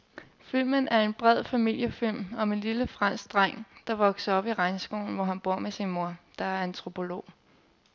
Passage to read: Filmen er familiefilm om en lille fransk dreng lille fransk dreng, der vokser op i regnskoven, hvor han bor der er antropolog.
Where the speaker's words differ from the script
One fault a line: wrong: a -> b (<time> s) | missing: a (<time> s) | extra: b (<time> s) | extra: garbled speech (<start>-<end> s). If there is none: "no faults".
extra: en bred (1.0 s)
missing: lille fransk dreng (3.7 s)
extra: med sin mor (5.6 s)